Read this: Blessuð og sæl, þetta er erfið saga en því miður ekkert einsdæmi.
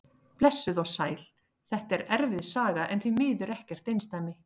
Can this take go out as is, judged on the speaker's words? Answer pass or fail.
pass